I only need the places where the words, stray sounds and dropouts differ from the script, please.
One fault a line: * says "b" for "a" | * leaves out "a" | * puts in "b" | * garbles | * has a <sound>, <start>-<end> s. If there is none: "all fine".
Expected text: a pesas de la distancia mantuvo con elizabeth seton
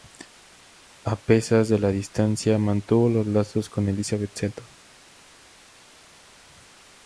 * puts in "los lazos"